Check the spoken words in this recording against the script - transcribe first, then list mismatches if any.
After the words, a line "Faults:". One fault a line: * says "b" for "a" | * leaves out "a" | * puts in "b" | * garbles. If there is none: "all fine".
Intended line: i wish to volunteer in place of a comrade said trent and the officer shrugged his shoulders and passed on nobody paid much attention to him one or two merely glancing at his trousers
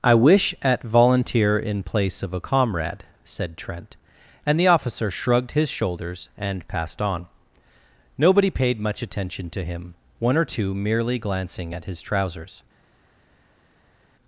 i wish at volunteer in place of a comrade said trent and the officer shrugged his shoulders and passed on nobody paid much attention to him one or two merely glancing at his trousers
Faults:
* says "at" for "to"